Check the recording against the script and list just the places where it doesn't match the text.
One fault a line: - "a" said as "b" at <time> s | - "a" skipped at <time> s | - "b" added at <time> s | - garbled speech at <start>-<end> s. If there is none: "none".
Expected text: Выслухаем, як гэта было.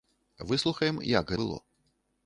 - "гэта" skipped at 1.3 s